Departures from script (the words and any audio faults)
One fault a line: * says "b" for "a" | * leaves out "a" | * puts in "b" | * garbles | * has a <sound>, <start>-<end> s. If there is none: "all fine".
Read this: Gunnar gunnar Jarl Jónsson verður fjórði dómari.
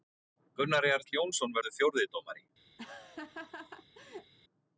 * leaves out "gunnar"
* has a laugh, 2.8-4.3 s